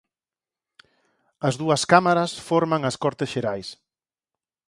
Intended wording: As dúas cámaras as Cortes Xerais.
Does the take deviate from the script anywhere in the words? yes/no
yes